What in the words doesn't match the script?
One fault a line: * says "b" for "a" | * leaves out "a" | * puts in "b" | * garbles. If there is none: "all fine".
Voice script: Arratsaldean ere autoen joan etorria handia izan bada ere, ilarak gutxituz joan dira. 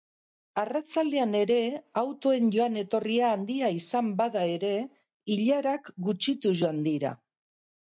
all fine